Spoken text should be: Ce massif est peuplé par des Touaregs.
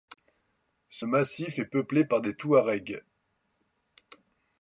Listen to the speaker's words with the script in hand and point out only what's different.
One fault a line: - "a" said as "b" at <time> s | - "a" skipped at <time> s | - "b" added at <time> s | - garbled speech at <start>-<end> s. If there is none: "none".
none